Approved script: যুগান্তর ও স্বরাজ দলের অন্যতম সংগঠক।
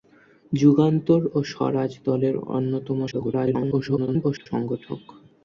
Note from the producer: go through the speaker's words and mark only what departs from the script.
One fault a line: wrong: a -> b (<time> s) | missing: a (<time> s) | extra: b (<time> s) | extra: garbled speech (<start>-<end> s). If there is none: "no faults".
extra: garbled speech (3.1-4.5 s)